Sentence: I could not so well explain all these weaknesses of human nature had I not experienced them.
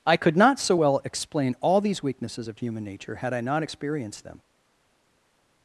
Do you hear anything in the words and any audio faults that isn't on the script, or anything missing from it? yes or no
no